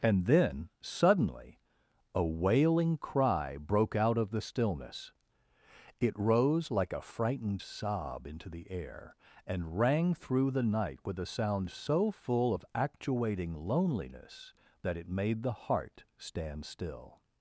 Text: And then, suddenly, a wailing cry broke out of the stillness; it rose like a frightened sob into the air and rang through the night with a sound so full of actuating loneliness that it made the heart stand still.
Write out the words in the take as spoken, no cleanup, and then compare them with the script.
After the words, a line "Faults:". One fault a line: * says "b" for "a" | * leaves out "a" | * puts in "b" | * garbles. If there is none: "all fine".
And then, suddenly, a wailing cry broke out of the stillness; it rose like a frightened sob into the air and rang through the night with a sound so full of actuating loneliness that it made the heart stand still.
Faults:
all fine